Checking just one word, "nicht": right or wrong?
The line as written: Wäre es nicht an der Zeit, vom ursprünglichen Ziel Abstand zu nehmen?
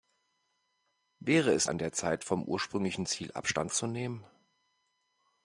wrong